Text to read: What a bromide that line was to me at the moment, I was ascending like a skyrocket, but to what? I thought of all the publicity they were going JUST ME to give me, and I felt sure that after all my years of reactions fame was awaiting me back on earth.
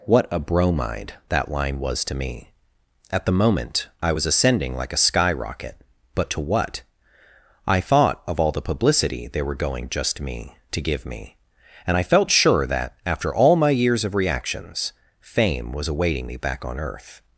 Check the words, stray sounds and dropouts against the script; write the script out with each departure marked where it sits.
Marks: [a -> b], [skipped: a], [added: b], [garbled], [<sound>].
What a bromide that line was to me at the moment, I was ascending like a skyrocket, but to what? I thought of all the publicity they were going JUST ME to give me, and I felt sure that after all my years of reactions fame was awaiting me back on earth.